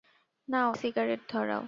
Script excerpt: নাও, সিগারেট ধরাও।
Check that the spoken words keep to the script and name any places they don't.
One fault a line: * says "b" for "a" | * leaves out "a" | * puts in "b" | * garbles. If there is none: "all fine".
all fine